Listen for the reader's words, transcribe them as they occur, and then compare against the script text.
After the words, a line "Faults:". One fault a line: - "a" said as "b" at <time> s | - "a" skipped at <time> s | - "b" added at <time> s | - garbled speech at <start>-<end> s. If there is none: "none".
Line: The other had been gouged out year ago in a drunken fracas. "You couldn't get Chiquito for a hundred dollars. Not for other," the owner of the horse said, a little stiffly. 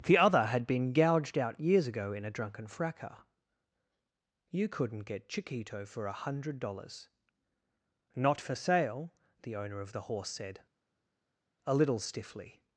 The other had been gouged out years ago in a drunken fracas. "You couldn't get Chiquito for a hundred dollars. Not for sale," the owner of the horse said, a little stiffly.
Faults:
- "year" said as "years" at 1.6 s
- "other" said as "sale" at 8.6 s